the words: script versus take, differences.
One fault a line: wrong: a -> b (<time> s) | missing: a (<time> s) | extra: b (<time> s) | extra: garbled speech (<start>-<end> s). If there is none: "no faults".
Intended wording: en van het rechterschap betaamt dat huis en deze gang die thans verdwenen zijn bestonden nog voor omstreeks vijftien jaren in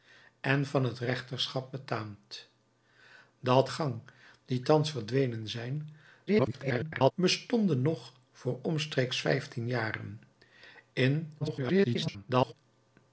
missing: huis en deze (3.7 s)
extra: garbled speech (6.3-7.1 s)
extra: garbled speech (11.4-12.5 s)